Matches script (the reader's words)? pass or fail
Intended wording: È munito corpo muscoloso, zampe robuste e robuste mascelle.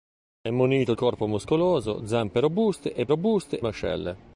pass